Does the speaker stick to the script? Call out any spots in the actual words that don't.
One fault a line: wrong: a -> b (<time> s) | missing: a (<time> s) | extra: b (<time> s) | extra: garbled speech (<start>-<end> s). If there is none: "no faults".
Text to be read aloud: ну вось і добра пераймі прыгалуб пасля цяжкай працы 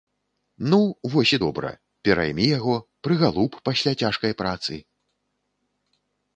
extra: яго (2.6 s)